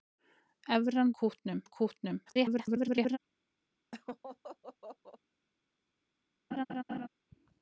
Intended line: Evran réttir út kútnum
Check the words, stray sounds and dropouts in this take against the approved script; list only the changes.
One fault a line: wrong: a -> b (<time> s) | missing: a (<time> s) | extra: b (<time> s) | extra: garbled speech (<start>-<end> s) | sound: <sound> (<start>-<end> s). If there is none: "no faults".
wrong: réttir -> kútnum (1.2 s)
extra: garbled speech (2.3-3.2 s)
sound: laugh (3.9-5.2 s)
sound: laugh (6.5-7.1 s)